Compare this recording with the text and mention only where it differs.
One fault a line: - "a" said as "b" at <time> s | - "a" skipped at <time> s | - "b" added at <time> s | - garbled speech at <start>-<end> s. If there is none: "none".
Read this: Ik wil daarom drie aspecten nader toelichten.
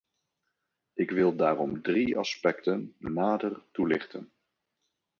none